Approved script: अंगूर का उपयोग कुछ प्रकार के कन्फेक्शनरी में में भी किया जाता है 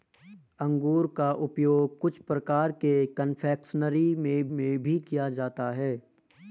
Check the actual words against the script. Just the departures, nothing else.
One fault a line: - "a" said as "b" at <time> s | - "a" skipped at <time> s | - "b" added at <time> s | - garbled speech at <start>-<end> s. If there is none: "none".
none